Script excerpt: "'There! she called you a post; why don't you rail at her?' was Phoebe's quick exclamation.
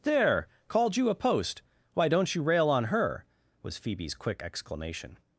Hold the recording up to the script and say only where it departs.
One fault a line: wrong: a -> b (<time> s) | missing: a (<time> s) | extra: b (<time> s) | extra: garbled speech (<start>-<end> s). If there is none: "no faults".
missing: she (0.5 s)
wrong: at -> on (2.7 s)